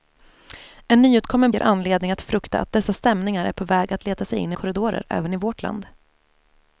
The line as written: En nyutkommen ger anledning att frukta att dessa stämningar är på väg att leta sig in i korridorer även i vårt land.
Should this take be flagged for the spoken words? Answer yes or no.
no